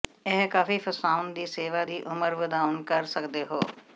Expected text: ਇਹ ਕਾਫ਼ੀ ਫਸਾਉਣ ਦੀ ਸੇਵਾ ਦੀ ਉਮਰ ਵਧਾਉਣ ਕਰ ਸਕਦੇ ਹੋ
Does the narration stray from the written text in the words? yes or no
no